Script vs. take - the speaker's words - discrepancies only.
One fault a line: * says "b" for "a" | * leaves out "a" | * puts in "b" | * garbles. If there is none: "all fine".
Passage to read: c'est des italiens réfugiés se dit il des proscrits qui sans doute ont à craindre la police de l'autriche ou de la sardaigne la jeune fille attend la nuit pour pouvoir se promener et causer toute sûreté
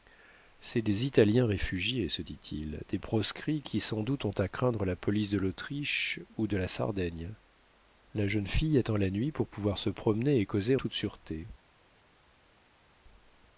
all fine